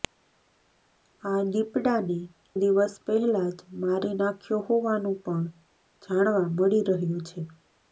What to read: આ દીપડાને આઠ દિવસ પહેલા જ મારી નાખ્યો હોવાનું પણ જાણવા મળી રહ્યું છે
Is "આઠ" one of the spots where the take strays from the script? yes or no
yes